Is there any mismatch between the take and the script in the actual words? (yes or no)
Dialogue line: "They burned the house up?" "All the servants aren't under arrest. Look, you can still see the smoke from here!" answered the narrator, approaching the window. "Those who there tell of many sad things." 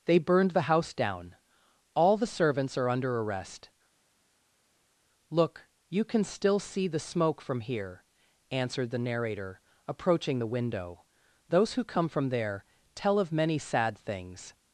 yes